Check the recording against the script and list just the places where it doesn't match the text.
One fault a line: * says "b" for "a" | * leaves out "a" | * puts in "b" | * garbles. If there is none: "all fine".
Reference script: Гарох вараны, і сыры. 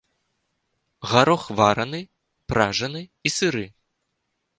* puts in "пражаны"